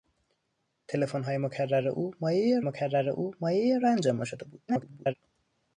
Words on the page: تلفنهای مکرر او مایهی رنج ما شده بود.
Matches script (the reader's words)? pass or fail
fail